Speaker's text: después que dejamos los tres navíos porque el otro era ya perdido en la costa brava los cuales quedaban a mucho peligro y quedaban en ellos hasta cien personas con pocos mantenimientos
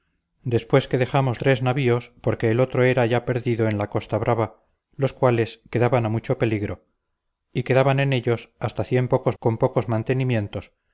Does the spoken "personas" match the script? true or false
false